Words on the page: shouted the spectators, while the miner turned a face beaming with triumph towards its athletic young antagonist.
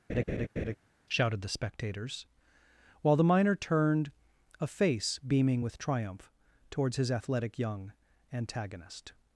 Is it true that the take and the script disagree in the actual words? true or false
true